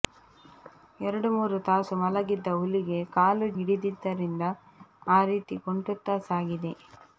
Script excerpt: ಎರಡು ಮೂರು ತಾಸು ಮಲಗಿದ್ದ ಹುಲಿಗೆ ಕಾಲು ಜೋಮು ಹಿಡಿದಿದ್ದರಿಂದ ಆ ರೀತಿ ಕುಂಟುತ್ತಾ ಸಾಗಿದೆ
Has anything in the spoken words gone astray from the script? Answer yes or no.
yes